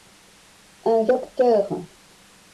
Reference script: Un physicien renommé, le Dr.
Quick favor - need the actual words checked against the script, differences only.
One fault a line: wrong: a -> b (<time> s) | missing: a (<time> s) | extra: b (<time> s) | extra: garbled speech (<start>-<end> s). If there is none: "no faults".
missing: physicien renommé le (1.1 s)